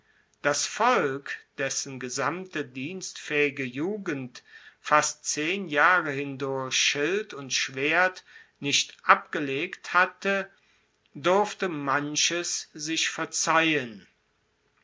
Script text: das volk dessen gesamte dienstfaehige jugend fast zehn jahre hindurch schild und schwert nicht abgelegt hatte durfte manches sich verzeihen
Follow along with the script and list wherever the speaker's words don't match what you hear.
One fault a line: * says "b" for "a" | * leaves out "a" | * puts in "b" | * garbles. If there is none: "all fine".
all fine